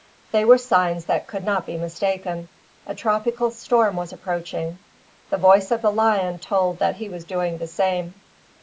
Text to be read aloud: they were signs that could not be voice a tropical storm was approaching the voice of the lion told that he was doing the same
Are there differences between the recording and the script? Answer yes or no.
yes